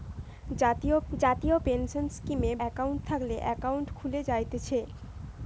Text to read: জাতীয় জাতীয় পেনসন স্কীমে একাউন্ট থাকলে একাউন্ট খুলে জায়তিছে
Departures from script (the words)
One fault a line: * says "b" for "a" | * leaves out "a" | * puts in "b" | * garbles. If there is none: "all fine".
all fine